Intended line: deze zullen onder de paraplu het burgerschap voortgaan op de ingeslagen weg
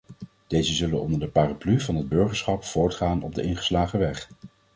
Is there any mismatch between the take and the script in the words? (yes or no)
yes